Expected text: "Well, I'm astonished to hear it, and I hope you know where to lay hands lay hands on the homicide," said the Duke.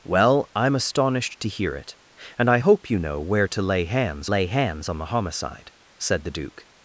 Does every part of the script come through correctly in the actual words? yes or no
yes